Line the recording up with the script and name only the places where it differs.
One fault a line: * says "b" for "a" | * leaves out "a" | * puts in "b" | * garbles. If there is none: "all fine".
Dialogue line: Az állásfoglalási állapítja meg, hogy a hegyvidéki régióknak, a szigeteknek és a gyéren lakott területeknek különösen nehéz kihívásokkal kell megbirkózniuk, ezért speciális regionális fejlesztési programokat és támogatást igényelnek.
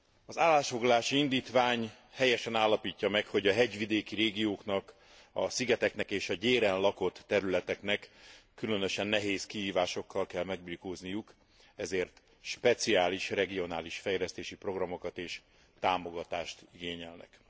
* puts in "indítvány helyesen"